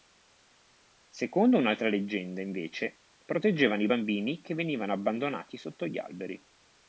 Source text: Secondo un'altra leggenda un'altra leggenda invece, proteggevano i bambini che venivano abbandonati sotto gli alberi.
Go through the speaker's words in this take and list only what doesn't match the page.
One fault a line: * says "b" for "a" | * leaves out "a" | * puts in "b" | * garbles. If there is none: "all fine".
* leaves out "un'altra leggenda"